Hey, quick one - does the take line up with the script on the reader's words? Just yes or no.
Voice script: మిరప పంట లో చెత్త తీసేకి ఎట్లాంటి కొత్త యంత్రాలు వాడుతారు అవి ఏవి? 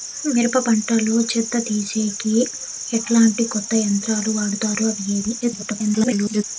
no